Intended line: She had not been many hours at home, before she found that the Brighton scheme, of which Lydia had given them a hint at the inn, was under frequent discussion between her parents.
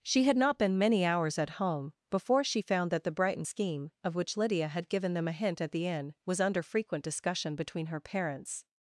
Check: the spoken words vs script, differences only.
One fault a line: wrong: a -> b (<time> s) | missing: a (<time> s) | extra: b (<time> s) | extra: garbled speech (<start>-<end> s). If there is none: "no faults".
no faults